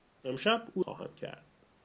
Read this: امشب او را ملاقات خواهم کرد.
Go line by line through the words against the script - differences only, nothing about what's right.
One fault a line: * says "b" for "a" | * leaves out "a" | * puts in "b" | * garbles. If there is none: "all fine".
* leaves out "را ملاقات"